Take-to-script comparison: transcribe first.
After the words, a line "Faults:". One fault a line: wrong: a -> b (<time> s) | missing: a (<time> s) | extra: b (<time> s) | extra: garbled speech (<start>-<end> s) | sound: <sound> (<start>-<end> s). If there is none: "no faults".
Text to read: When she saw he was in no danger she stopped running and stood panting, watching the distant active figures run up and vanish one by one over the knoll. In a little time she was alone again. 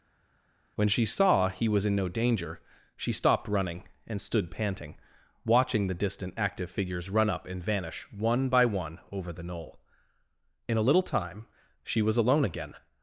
When she saw he was in no danger she stopped running and stood panting, watching the distant active figures run up and vanish one by one over the knoll. In a little time she was alone again.
Faults:
no faults